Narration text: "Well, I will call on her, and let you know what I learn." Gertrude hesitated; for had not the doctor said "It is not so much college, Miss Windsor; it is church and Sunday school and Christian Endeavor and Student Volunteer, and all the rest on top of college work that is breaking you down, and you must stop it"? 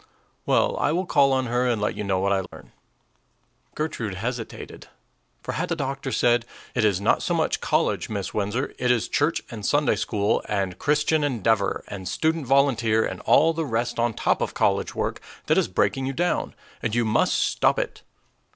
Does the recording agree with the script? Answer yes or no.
no